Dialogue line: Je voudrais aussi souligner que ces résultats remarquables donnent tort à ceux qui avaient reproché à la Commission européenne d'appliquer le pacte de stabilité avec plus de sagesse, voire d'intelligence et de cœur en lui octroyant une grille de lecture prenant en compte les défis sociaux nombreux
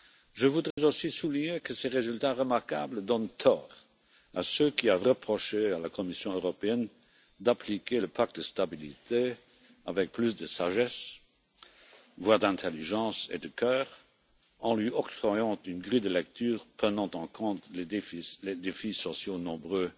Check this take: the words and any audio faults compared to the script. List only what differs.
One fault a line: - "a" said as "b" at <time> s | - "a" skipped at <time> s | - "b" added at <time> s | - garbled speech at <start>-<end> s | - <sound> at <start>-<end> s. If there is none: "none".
- dropout at 0.7-0.8 s